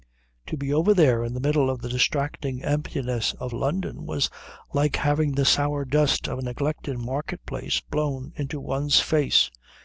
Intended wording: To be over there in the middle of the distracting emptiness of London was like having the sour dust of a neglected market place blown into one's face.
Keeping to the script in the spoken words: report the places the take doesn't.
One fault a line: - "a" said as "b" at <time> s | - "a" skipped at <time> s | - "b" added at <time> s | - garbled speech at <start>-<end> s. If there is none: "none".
none